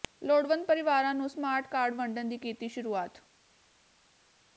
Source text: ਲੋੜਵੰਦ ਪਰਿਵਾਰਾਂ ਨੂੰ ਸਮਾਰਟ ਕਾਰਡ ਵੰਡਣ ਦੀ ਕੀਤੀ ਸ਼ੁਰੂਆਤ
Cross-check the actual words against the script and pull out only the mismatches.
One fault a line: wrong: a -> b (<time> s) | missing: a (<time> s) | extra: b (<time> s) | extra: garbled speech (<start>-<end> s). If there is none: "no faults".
no faults